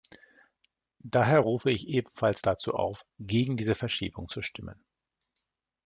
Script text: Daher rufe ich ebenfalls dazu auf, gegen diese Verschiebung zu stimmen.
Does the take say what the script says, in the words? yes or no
yes